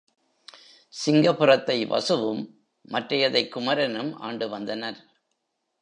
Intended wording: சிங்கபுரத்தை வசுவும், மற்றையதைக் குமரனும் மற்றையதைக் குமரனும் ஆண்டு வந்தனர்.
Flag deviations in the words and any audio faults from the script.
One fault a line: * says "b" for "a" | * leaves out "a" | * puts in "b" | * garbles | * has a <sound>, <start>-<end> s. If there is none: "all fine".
* leaves out "மற்றையதைக் குமரனும்"